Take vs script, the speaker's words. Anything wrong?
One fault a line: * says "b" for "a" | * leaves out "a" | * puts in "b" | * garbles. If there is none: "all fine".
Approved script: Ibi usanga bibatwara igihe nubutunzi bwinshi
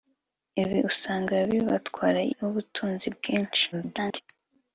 * leaves out "igihe"
* garbles